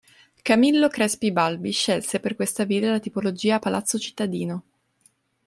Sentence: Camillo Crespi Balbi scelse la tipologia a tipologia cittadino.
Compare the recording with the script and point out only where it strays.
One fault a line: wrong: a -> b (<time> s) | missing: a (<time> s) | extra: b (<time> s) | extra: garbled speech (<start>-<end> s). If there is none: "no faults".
extra: per questa villa (2.2 s)
wrong: tipologia -> palazzo (3.6 s)